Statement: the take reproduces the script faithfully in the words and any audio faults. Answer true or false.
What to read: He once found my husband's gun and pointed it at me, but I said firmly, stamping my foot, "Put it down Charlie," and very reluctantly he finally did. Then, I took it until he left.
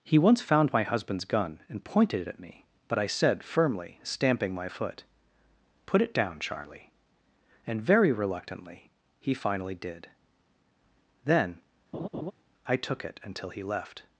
false